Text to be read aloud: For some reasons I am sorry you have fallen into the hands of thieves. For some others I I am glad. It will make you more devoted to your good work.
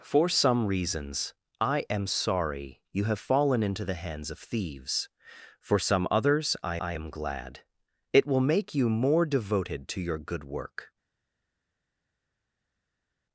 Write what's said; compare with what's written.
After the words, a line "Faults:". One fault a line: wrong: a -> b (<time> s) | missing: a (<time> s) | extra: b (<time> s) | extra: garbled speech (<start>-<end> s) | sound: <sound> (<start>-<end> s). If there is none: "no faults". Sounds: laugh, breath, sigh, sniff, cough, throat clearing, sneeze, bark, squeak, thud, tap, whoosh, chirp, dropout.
For some reasons I am sorry you have fallen into the hands of thieves. For some others I I am glad. It will make you more devoted to your good work.
Faults:
no faults